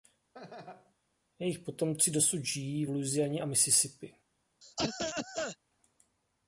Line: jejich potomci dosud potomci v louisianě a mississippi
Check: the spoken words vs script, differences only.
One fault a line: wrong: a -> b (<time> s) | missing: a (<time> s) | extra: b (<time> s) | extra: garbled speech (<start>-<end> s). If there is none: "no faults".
wrong: potomci -> žijí (2.4 s)